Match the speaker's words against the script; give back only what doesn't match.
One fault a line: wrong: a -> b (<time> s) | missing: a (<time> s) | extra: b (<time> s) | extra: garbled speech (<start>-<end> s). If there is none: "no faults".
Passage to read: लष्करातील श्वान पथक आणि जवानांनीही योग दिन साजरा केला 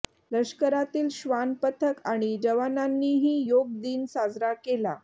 no faults